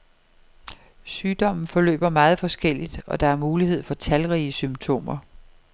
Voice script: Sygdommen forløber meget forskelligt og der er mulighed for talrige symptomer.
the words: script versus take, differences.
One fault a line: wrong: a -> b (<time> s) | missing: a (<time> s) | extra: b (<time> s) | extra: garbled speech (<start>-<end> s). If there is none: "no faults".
no faults